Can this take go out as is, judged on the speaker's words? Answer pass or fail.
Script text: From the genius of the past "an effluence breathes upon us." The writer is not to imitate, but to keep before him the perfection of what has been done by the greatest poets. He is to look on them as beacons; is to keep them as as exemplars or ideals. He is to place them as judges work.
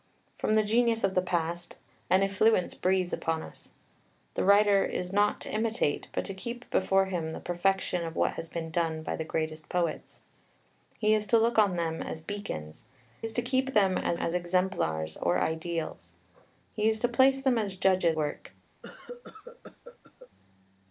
pass